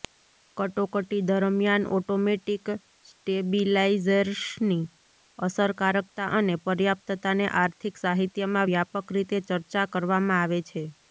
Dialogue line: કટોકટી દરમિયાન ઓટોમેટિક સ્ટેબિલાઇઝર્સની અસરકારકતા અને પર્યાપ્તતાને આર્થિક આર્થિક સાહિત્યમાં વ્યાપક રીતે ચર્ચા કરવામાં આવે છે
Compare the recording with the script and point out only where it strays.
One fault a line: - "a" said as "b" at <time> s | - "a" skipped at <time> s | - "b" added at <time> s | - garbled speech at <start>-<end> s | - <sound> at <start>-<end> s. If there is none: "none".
- "આર્થિક" skipped at 8.0 s